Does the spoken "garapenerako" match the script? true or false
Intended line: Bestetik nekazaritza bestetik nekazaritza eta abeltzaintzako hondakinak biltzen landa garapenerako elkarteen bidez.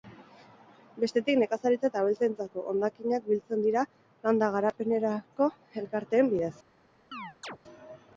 true